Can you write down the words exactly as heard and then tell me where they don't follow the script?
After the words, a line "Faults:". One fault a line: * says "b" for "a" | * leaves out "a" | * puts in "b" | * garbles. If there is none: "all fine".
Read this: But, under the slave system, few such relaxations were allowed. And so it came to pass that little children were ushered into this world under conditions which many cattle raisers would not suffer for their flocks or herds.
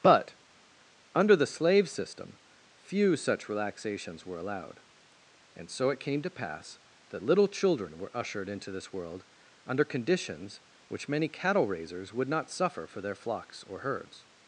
But, under the slave system, few such relaxations were allowed. And so it came to pass that little children were ushered into this world under conditions which many cattle raisers would not suffer for their flocks or herds.
Faults:
all fine